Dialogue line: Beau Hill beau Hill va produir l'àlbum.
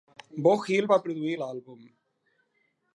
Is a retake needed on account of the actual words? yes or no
yes